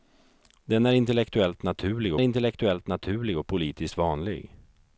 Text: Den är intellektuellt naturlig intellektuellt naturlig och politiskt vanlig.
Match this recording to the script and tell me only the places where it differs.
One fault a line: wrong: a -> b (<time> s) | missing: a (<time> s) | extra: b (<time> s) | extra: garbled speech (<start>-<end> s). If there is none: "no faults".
no faults